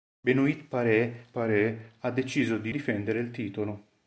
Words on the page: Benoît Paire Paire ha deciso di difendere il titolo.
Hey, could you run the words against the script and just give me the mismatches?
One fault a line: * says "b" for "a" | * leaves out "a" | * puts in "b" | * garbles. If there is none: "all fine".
all fine